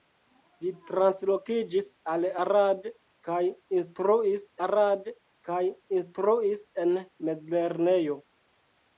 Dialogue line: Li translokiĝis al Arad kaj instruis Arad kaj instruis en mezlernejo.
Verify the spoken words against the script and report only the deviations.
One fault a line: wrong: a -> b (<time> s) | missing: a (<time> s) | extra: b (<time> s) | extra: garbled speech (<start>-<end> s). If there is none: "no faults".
no faults